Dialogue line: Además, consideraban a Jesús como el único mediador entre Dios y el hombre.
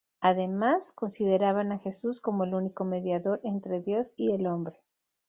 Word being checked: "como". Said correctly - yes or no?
yes